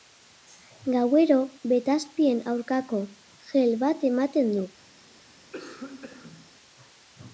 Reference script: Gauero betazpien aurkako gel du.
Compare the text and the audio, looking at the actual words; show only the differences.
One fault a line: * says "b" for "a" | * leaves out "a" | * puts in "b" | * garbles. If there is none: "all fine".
* puts in "bat ematen"